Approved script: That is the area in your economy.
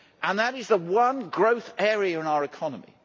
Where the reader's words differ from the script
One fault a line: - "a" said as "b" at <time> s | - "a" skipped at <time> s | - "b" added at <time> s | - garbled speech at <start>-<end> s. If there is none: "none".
- "one growth" added at 0.8 s
- "your" said as "our" at 2.3 s